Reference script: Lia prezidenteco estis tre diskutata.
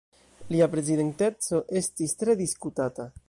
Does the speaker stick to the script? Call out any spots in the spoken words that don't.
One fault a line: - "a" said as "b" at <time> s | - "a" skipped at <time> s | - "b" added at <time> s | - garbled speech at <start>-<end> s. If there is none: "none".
none